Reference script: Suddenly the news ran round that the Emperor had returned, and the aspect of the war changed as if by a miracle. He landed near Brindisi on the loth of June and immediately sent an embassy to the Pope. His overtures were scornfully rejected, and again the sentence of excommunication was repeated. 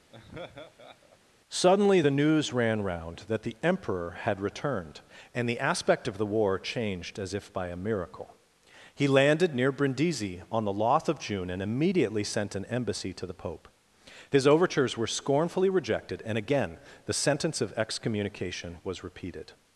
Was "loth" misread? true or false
false